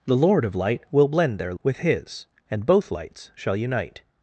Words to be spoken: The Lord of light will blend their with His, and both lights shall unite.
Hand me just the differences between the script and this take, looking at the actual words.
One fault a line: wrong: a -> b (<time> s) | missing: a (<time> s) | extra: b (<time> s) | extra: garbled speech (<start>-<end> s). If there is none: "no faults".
no faults